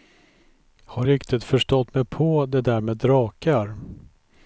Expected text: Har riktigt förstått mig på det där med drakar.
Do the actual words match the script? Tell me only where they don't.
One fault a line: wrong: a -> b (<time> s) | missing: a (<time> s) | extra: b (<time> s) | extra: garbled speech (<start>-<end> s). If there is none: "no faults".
no faults